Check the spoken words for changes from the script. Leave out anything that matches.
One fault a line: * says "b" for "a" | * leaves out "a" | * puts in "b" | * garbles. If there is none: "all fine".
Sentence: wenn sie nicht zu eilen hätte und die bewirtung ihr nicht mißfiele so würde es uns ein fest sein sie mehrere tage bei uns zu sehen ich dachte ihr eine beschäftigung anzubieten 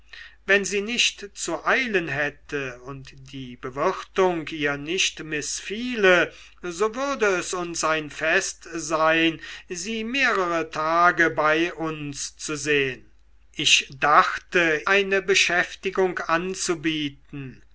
* leaves out "ihr"